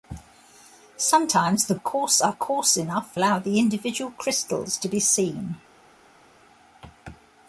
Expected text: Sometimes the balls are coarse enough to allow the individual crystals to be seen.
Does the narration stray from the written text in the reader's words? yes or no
yes